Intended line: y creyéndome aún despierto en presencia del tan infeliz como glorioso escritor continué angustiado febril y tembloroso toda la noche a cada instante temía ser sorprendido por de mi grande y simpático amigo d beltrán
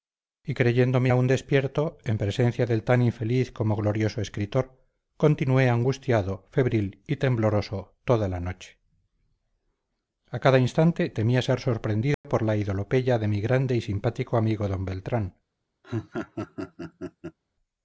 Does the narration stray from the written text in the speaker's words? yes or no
yes